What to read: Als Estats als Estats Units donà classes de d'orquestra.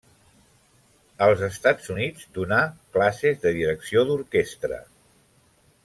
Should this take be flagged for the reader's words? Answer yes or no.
yes